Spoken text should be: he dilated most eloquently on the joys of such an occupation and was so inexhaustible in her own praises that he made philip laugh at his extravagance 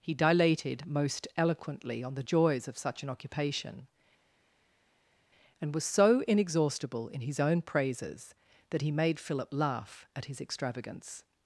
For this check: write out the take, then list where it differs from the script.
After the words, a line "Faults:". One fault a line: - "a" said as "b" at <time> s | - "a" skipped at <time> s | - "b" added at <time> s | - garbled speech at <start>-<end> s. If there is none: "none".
he dilated most eloquently on the joys of such an occupation and was so inexhaustible in his own praises that he made philip laugh at his extravagance
Faults:
- "her" said as "his" at 7.2 s